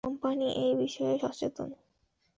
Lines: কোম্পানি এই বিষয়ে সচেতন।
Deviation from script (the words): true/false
false